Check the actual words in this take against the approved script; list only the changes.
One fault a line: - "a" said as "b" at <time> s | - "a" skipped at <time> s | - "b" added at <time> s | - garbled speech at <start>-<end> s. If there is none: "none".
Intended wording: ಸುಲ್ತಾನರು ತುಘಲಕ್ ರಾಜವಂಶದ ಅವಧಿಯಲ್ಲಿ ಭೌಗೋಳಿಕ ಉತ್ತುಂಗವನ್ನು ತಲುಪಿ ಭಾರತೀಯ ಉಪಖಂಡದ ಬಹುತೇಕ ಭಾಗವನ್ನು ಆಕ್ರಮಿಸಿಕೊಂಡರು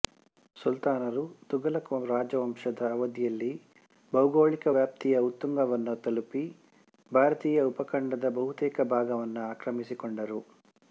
- "ವ್ಯಾಪ್ತಿಯ" added at 4.7 s